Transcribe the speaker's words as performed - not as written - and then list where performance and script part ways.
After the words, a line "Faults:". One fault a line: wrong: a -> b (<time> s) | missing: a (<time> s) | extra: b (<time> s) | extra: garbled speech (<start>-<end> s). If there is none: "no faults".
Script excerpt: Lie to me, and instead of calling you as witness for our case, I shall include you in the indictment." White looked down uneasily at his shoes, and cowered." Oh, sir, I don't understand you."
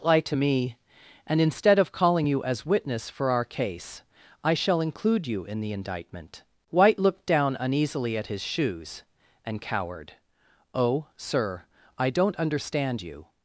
Lie to me, and instead of calling you as witness for our case, I shall include you in the indictment." White looked down uneasily at his shoes, and cowered." Oh, sir, I don't understand you."
Faults:
no faults